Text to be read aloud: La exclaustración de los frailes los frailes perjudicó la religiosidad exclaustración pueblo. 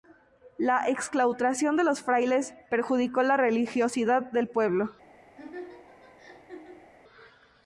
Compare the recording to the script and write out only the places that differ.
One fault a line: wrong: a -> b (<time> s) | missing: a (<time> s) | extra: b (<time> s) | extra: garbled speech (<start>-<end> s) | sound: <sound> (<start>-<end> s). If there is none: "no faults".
missing: los frailes (2.5 s)
wrong: exclaustración -> del (4.3 s)
sound: laugh (5.4-6.9 s)